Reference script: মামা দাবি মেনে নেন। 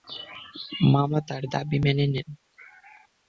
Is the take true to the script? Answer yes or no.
no